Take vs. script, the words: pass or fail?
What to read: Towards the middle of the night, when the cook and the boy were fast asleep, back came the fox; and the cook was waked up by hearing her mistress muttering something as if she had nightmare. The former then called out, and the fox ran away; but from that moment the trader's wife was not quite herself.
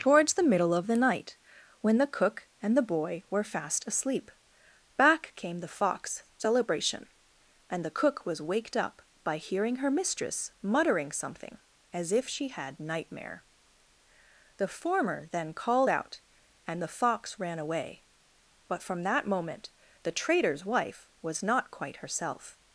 fail